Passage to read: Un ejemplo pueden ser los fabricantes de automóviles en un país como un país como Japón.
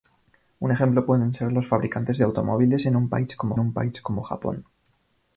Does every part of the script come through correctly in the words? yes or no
yes